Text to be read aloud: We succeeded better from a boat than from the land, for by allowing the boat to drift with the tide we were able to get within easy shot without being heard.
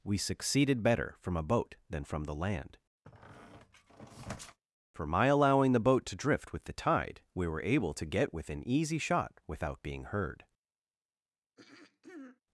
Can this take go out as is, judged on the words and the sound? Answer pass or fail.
fail